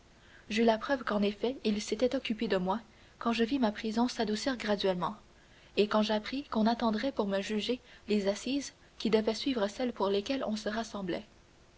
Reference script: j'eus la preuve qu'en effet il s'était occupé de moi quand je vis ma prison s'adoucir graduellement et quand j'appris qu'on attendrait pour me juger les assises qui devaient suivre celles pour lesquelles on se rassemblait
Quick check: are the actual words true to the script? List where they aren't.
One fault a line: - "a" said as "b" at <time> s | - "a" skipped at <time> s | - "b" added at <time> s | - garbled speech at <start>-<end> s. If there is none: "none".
none